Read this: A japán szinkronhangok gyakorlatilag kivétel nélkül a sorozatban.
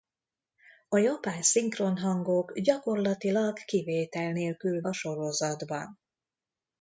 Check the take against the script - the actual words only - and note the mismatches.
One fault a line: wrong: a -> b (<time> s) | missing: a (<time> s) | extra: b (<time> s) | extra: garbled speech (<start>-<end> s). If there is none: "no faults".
no faults